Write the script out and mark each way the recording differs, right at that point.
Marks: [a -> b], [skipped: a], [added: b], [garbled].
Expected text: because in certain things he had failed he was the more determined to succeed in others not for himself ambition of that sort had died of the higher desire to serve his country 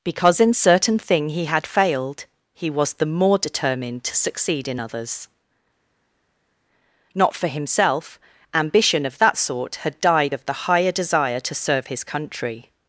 because in certain [things -> thing] he had failed he was the more determined to succeed in others not for himself ambition of that sort had died of the higher desire to serve his country